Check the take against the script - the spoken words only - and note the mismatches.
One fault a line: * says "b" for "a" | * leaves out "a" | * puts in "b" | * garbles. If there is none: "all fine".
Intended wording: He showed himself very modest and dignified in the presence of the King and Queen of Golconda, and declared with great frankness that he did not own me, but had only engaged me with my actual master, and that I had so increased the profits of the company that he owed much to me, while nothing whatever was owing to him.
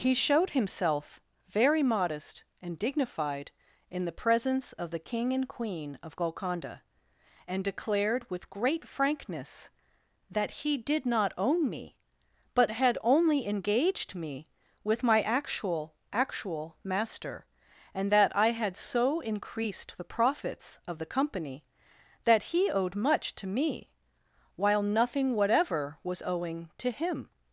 * puts in "actual"